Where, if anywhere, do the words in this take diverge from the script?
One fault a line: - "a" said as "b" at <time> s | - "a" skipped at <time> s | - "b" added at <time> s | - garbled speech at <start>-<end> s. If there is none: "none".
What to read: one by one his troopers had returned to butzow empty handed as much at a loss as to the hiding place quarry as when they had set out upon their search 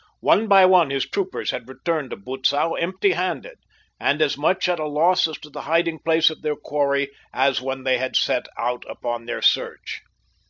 - "and" added at 4.0 s
- "of their" added at 6.3 s